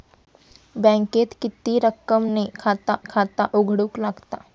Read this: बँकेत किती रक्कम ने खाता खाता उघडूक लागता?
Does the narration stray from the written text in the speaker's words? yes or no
no